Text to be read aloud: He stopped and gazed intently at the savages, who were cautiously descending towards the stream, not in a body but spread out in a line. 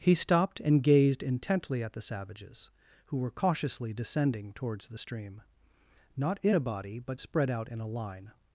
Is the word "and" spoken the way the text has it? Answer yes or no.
yes